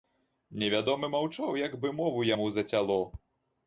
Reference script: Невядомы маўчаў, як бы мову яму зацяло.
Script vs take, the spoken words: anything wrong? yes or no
no